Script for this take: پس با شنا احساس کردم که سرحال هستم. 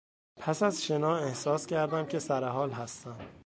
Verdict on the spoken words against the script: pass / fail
fail